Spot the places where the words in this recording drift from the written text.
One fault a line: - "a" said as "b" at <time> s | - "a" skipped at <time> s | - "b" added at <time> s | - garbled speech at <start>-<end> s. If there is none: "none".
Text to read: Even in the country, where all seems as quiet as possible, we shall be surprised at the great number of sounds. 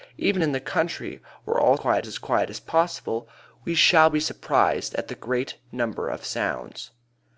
- "seems" said as "quiet" at 1.7 s